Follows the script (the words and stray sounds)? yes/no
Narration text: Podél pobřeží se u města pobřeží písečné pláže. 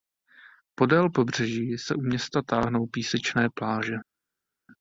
no